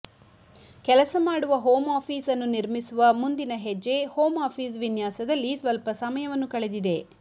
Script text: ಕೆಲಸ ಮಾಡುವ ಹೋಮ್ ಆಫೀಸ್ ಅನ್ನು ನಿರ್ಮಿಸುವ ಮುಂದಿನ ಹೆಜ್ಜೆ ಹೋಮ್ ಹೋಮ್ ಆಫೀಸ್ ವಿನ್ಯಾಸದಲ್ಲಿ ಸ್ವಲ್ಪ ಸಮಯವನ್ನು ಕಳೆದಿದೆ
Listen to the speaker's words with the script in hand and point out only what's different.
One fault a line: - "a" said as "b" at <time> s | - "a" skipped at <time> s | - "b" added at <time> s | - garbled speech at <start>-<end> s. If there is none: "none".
- "ಹೋಮ್" skipped at 4.4 s